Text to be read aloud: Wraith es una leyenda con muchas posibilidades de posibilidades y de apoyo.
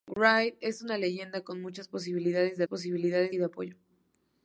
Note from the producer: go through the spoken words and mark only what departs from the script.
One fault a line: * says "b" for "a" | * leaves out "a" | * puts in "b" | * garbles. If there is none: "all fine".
all fine